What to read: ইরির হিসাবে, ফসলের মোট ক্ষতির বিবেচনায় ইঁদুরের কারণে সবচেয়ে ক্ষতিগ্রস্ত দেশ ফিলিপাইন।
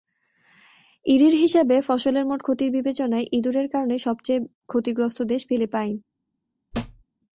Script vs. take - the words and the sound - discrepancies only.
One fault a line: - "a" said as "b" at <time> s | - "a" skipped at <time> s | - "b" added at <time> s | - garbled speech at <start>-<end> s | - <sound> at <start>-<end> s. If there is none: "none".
- thud at 6.7-7.0 s